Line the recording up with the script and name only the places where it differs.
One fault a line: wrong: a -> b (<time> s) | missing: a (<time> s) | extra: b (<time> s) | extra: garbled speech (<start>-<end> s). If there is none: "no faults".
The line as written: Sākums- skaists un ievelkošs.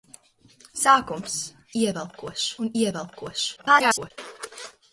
wrong: skaists -> ievelkošs (1.7 s)
extra: garbled speech (3.6-4.1 s)